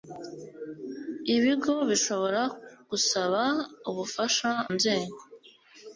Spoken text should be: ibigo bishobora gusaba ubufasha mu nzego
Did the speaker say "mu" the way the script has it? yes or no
no